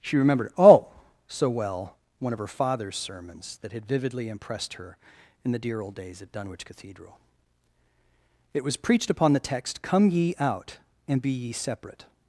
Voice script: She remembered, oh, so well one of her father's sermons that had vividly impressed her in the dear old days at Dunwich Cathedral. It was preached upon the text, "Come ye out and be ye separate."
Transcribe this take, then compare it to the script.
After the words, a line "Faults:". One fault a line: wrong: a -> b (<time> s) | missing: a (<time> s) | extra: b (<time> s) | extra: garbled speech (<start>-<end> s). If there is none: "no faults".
She remembered, oh, so well one of her father's sermons that had vividly impressed her in the dear old days at Dunwich Cathedral. It was preached upon the text, "Come ye out and be ye separate."
Faults:
no faults